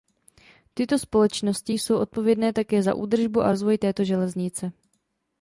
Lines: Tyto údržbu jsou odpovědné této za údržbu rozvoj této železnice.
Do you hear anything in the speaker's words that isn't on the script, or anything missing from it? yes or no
yes